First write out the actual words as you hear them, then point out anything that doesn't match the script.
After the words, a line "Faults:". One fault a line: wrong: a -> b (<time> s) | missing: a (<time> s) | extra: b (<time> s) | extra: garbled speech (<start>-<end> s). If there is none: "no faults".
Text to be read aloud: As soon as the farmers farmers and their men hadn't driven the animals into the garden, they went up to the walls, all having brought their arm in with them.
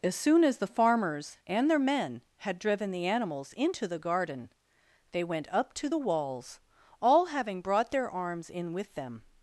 As soon as the farmers and their men had driven the animals into the garden, they went up to the walls, all having brought their arms in with them.
Faults:
missing: farmers (1.4 s)
wrong: hadn't -> had (2.4 s)
wrong: arm -> arms (8.1 s)